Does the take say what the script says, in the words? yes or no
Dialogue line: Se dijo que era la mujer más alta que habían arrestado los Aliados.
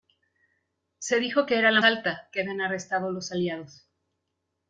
no